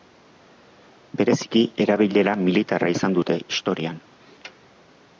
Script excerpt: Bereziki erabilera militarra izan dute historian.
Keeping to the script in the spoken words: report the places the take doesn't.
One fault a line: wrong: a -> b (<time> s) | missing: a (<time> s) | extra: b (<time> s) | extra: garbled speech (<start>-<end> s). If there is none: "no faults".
no faults